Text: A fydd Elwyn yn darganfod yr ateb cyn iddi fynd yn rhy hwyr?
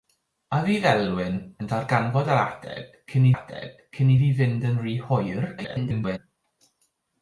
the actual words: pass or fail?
fail